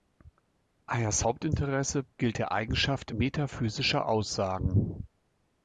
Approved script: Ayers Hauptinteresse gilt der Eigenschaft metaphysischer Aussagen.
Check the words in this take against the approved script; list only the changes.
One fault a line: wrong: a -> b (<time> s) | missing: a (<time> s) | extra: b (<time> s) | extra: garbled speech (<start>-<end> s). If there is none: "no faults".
no faults